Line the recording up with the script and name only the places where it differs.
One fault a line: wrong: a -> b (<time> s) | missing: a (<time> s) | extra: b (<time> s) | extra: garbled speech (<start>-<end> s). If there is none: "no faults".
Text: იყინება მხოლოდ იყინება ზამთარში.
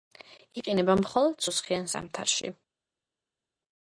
wrong: იყინება -> სუსხიან (1.4 s)